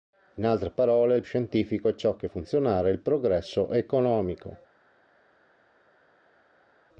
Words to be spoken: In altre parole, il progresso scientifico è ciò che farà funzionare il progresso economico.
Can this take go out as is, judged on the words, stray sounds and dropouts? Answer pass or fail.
fail